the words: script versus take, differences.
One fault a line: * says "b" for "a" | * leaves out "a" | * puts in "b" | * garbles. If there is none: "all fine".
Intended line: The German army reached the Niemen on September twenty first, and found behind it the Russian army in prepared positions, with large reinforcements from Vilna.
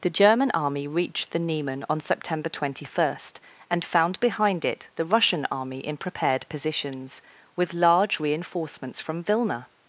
all fine